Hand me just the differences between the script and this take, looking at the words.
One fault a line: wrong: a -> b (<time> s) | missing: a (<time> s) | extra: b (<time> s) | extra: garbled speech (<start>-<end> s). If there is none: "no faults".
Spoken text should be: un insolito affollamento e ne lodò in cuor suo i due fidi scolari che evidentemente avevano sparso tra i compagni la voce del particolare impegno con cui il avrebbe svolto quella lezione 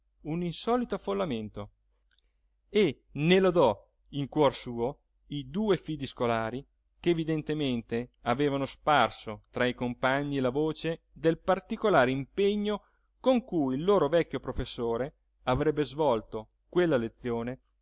extra: loro vecchio professore (13.8 s)